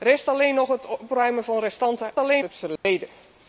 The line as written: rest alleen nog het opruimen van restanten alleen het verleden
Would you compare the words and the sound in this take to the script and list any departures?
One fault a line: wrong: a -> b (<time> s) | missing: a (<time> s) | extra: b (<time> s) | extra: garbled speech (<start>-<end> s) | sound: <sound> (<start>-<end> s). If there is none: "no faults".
sound: dropout (2.8-2.9 s)